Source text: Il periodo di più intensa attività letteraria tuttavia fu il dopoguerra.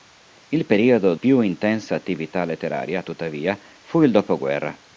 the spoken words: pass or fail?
fail